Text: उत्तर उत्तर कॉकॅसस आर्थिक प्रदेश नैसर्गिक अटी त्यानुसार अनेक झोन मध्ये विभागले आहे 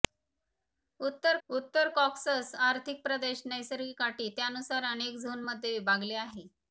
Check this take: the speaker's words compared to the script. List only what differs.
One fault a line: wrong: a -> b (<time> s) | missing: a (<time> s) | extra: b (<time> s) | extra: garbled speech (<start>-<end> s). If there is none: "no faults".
no faults